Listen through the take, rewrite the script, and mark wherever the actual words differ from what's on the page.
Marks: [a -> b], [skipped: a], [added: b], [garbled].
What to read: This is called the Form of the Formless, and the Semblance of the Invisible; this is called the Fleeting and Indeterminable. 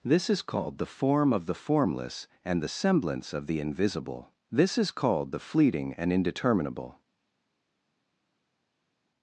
This is called the Form of the Formless, and the Semblance of the Invisible; this is called the Fleeting and Indeterminable.